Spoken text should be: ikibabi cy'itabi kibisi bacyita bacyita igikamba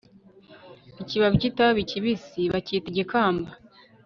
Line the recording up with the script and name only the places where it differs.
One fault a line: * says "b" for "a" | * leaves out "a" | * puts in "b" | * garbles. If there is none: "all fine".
* leaves out "bacyita"